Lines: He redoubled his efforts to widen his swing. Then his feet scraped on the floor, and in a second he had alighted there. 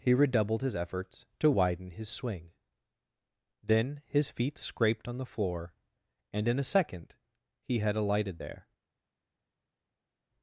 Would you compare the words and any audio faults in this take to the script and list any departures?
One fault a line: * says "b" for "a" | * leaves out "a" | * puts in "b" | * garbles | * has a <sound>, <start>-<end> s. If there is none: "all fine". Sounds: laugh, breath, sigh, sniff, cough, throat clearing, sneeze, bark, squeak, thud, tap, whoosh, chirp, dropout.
all fine